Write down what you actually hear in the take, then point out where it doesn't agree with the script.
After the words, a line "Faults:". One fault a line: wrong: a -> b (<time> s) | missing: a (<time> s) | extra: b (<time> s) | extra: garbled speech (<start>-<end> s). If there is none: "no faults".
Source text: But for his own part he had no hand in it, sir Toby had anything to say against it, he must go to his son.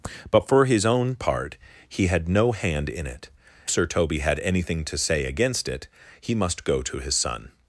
But for his own part he had no hand in it, sir Toby had anything to say against it, he must go to his son.
Faults:
no faults